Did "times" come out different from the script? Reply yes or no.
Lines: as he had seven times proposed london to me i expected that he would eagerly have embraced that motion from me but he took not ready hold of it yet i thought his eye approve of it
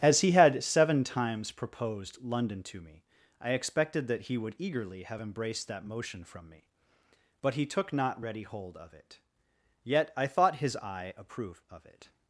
no